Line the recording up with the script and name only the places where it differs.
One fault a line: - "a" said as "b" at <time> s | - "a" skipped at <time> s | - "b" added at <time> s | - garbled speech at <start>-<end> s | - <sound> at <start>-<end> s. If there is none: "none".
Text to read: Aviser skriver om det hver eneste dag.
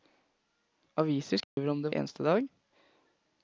- dropout at 1.4-1.6 s
- "hver" skipped at 1.9 s